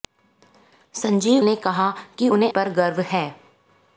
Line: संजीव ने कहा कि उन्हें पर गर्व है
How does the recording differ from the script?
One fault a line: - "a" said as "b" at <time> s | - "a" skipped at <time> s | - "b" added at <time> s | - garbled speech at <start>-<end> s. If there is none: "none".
none